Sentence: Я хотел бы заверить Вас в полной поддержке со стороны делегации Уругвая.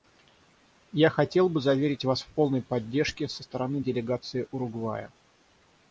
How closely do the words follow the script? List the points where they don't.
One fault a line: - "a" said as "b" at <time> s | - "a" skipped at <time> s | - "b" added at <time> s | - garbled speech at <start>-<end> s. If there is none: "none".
none